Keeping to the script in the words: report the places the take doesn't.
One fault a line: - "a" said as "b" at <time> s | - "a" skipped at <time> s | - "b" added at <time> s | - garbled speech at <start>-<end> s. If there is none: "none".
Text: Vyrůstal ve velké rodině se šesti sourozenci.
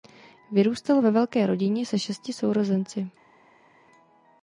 none